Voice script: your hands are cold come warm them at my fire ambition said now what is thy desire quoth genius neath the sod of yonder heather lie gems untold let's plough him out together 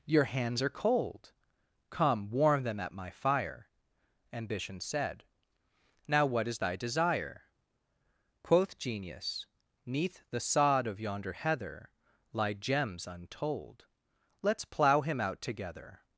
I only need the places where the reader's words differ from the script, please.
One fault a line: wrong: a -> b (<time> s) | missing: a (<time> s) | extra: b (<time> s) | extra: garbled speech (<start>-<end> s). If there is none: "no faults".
no faults